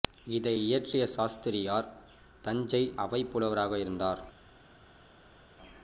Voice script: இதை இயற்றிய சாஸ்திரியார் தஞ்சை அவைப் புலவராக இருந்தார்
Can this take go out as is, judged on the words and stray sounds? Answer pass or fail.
pass